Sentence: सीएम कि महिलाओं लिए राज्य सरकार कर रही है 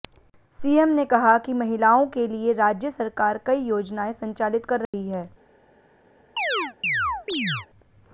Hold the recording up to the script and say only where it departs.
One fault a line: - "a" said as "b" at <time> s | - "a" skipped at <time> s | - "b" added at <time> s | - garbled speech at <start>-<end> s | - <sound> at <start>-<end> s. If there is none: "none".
- "ने कहा" added at 0.9 s
- "के" added at 2.1 s
- "कई योजनाएं संचालित" added at 3.5 s
- dropout at 4.9-4.9 s
- chirp at 6.4-7.7 s